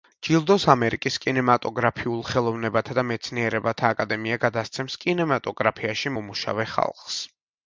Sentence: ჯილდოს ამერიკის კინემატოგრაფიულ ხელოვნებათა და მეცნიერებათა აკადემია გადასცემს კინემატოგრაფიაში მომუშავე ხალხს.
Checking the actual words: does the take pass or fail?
pass